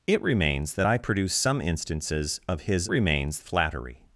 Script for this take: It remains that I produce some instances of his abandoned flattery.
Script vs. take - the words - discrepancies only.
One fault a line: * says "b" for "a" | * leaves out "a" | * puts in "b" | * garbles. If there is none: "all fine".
* says "remains" for "abandoned"